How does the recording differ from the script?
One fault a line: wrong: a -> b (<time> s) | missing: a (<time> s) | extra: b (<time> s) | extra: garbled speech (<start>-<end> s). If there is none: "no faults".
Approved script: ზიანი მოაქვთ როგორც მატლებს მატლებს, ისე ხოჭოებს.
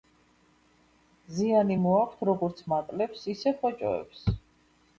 missing: მატლებს (3.3 s)